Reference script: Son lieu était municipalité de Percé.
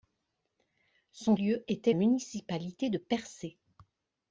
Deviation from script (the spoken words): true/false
false